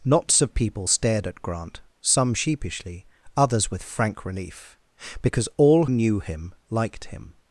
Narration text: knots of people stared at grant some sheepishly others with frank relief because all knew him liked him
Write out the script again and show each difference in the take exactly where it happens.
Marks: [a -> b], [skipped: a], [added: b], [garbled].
knots of people stared at grant some sheepishly others with frank relief because all knew him liked him